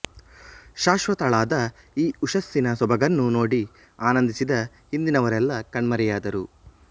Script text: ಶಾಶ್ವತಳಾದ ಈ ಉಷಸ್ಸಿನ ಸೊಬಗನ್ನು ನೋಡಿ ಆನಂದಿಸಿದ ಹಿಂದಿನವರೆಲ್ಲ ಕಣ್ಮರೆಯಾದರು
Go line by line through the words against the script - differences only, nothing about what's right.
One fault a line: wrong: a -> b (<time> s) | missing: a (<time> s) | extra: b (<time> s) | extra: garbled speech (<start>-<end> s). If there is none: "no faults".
no faults